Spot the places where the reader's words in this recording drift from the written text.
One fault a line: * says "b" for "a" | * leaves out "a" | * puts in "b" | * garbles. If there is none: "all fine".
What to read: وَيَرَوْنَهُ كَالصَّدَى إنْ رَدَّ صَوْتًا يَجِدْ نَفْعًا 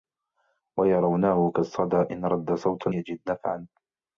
all fine